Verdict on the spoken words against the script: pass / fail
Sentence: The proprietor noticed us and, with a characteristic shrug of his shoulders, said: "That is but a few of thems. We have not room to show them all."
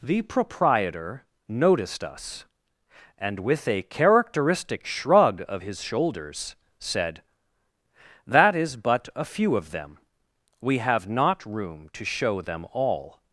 fail